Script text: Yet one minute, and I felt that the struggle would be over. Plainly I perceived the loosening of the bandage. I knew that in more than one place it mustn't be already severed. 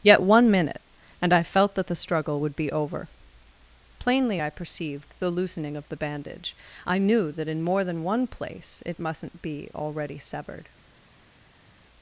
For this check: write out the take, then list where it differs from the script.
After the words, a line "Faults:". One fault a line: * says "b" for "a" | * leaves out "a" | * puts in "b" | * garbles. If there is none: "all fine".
Yet one minute, and I felt that the struggle would be over. Plainly I perceived the loosening of the bandage. I knew that in more than one place it mustn't be already severed.
Faults:
all fine